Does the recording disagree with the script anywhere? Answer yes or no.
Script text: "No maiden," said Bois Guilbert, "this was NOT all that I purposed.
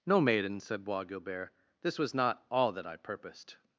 no